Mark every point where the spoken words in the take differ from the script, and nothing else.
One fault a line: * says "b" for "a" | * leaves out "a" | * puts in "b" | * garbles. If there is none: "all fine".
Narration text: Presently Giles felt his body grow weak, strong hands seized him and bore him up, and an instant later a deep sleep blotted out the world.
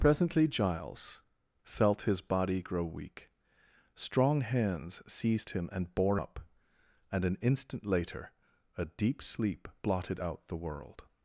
* leaves out "him"